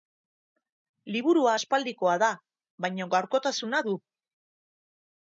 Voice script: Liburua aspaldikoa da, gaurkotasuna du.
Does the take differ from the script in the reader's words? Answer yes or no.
yes